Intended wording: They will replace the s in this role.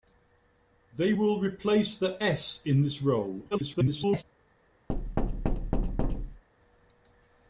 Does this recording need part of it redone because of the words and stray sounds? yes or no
yes